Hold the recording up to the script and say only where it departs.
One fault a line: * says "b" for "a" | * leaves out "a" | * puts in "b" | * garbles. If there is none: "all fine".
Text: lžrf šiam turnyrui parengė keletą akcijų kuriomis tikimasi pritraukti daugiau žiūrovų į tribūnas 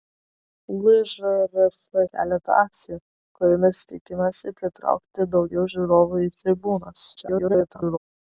* leaves out "šiam turnyrui parengė"
* garbles